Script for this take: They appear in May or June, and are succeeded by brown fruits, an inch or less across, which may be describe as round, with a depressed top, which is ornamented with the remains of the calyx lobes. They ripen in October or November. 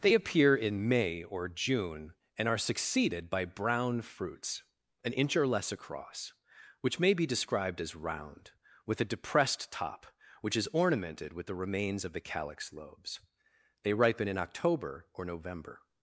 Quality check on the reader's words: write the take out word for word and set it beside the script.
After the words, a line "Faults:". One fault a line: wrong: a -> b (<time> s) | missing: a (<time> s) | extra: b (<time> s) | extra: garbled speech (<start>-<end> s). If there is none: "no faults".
They appear in May or June, and are succeeded by brown fruits, an inch or less across, which may be described as round, with a depressed top, which is ornamented with the remains of the calyx lobes. They ripen in October or November.
Faults:
wrong: describe -> described (7.3 s)